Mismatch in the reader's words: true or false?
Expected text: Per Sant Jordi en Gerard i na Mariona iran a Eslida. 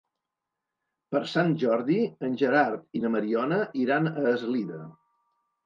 false